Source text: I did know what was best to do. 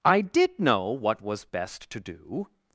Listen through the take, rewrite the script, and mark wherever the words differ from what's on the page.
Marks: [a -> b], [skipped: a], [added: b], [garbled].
I did know what was best to do.